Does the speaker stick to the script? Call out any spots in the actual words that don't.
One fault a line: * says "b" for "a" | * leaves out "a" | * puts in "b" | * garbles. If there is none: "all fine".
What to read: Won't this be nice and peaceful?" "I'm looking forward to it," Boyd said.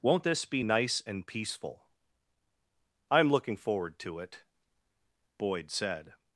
all fine